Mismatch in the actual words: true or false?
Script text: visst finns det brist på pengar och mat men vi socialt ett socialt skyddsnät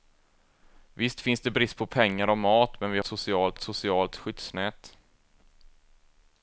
false